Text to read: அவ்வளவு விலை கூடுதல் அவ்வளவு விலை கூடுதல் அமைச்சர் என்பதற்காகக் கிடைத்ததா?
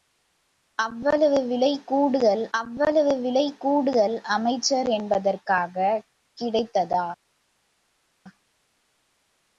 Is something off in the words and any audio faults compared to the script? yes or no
no